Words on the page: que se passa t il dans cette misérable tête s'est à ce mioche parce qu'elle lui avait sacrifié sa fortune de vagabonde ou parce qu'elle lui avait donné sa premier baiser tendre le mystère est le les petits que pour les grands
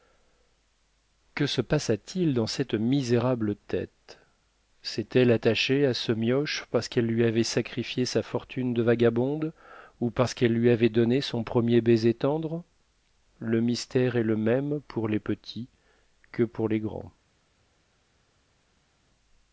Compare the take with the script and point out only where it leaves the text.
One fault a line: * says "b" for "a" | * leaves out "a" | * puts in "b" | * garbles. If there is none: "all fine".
* puts in "elle attachée"
* says "son" for "sa"
* puts in "même pour"